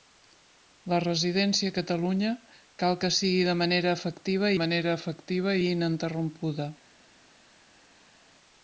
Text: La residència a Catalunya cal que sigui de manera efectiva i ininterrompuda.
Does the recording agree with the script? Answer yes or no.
no